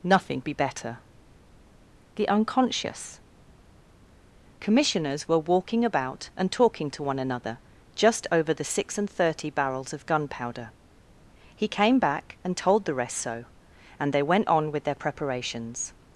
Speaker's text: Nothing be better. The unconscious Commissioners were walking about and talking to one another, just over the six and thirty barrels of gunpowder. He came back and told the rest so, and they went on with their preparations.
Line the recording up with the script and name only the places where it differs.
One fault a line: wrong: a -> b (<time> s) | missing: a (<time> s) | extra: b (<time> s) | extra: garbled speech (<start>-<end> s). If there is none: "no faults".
no faults